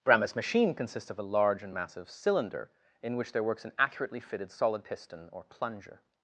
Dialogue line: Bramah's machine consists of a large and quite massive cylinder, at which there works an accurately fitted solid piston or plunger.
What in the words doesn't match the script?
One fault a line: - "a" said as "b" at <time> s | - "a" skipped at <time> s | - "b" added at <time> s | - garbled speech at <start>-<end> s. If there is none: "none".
- "quite" skipped at 1.8 s
- "at" said as "in" at 3.0 s